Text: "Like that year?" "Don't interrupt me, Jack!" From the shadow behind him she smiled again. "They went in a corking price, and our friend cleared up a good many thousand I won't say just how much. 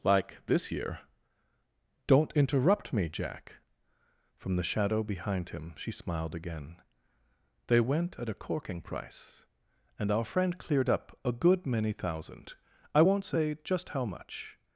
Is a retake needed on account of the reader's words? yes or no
yes